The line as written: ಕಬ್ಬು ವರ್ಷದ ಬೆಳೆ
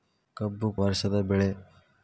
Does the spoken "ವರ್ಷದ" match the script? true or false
true